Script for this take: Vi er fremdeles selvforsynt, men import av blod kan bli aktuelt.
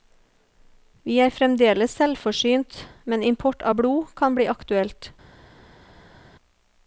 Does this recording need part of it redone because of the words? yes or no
no